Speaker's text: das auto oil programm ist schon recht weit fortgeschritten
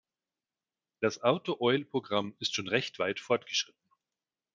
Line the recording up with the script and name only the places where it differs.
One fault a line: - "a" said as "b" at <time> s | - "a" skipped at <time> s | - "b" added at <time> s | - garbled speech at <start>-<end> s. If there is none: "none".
none